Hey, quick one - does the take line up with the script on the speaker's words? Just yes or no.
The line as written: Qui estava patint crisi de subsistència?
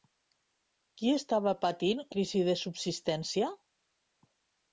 yes